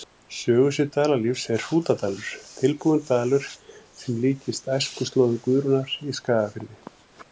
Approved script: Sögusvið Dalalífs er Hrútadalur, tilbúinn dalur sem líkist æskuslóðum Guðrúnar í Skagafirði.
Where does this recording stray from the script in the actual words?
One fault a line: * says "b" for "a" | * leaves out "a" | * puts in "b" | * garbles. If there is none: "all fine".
all fine